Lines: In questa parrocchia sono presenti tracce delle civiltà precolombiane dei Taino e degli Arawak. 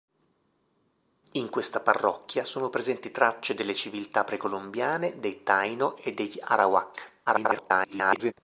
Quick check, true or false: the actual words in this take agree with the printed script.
false